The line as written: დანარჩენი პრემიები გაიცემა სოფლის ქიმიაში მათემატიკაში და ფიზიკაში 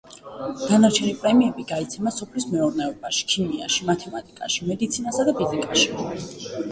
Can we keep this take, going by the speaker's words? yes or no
no